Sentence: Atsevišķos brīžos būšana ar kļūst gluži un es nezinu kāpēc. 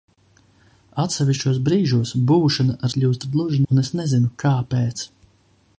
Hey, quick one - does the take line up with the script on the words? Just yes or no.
yes